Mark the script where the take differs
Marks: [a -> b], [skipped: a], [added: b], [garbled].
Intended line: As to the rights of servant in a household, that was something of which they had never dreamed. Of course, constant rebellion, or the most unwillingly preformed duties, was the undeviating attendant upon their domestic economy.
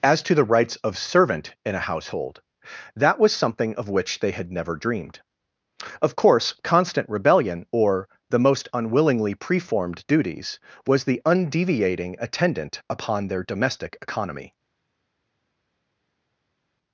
As to the rights of servant in a household, that was something of which they had never dreamed. Of course, constant rebellion, or the most unwillingly preformed duties, was the undeviating attendant upon their domestic economy.